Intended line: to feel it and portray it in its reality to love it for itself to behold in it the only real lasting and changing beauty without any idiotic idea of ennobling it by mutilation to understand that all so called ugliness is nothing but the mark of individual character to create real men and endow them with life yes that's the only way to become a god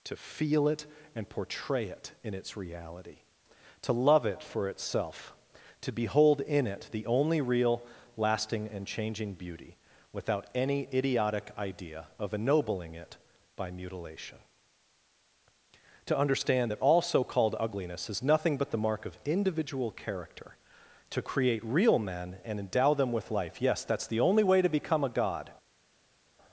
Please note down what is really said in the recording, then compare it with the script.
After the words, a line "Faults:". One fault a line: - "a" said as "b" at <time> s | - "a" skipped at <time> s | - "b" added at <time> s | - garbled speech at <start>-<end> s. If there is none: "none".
to feel it and portray it in its reality to love it for itself to behold in it the only real lasting and changing beauty without any idiotic idea of ennobling it by mutilation to understand that all so called ugliness is nothing but the mark of individual character to create real men and endow them with life yes that's the only way to become a god
Faults:
none